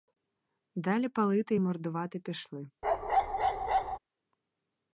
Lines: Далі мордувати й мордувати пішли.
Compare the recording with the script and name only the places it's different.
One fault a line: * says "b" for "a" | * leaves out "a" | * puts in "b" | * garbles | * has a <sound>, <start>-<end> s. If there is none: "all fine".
* says "палити" for "мордувати"
* has a bark, 2.8-4.0 s